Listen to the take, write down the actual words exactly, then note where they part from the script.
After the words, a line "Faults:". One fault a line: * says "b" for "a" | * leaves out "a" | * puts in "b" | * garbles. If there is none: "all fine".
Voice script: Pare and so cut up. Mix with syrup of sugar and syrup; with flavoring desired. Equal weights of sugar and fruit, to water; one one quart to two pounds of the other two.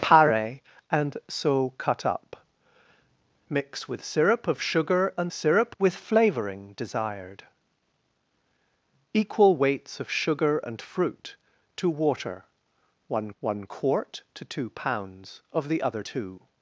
Pare and so cut up. Mix with syrup of sugar and syrup; with flavoring desired. Equal weights of sugar and fruit, to water; one one quart to two pounds of the other two.
Faults:
all fine